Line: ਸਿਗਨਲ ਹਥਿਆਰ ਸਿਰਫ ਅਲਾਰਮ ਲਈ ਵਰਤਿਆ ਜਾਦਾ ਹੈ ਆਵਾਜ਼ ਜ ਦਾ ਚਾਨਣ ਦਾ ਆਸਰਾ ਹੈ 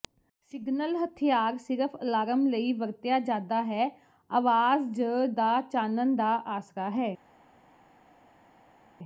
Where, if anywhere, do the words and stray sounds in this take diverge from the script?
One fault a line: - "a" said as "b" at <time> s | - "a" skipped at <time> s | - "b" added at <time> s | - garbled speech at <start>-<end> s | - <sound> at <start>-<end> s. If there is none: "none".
none